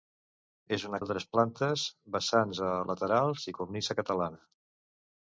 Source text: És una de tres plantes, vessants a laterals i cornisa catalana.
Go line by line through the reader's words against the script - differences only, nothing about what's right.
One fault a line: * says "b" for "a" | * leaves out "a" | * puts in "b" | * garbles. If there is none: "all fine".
all fine